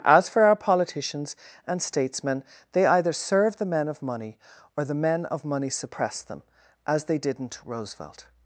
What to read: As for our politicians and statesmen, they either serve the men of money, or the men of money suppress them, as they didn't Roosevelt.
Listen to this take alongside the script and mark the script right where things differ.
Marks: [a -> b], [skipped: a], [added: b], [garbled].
As for our politicians and statesmen, they either serve the men of money, or the men of money suppress them, as they didn't Roosevelt.